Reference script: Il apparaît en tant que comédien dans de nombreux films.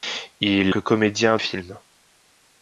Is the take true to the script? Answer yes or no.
no